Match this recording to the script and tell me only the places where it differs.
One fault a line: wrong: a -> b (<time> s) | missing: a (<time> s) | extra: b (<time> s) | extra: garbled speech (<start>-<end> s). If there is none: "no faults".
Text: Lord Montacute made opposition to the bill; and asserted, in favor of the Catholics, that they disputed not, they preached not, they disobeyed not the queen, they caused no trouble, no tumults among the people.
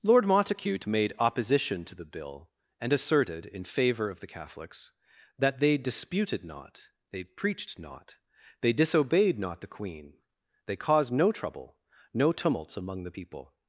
no faults